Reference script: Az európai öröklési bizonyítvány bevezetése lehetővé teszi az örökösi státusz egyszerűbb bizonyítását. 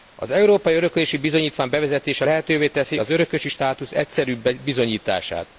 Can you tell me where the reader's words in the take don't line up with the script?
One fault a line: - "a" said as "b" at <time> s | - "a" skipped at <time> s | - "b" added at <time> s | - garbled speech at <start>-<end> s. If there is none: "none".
none